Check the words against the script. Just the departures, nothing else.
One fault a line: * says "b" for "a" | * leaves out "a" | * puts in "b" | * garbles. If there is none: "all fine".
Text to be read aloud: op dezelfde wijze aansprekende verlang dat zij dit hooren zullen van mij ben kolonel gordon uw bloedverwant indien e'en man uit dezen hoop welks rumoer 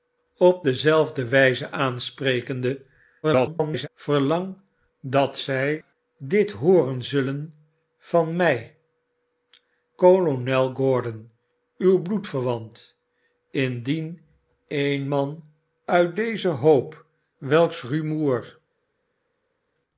* garbles
* leaves out "ben"